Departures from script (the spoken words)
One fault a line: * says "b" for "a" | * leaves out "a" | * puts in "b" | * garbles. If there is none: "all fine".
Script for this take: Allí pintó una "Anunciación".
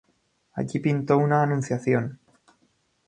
all fine